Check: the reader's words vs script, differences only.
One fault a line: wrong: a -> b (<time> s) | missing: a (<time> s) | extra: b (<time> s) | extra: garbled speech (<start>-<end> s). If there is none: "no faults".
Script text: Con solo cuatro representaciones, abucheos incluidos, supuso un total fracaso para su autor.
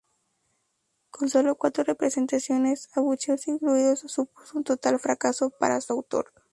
no faults